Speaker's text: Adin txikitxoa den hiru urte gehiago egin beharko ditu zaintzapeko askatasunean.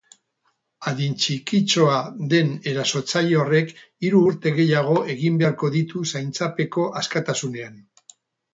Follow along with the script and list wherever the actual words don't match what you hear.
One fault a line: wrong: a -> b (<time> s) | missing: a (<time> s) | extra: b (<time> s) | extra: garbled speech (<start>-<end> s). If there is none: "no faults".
extra: erasotzaile horrek (2.7 s)